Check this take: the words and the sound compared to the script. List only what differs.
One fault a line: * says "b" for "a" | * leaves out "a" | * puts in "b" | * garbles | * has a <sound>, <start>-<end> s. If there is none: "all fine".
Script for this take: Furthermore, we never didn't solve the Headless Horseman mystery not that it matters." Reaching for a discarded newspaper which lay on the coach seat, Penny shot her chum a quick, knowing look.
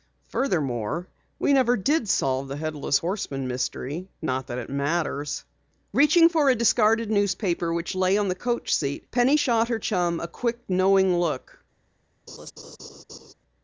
* says "did" for "didn't"
* has a laugh, 12.3-13.3 s